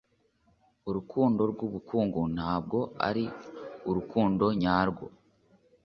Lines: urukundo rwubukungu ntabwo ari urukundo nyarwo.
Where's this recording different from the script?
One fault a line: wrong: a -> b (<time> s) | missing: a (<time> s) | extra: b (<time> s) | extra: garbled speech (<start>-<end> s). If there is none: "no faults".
no faults